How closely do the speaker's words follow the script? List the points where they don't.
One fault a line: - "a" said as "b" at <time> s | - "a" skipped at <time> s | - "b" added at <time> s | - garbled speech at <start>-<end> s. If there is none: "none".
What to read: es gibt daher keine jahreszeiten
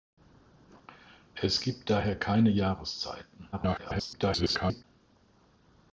- garbled speech at 3.5-4.8 s